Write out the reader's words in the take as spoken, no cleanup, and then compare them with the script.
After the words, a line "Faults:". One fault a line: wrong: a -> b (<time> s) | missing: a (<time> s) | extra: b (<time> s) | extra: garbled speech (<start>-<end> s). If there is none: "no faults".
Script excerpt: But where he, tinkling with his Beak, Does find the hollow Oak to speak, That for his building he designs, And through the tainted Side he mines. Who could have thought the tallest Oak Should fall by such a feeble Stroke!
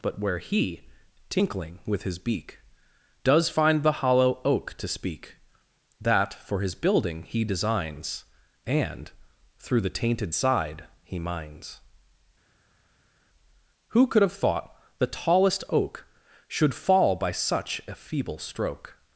But where he, tinkling with his Beak, Does find the hollow Oak to speak, That for his building he designs, And through the tainted Side he mines. Who could have thought the tallest Oak Should fall by such a feeble Stroke!
Faults:
no faults